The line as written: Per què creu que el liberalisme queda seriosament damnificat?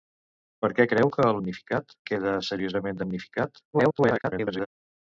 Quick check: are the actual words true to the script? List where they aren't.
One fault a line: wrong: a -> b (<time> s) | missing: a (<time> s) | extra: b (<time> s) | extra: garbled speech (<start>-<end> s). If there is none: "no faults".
wrong: liberalisme -> damnificat (1.4 s)
extra: garbled speech (3.7-4.7 s)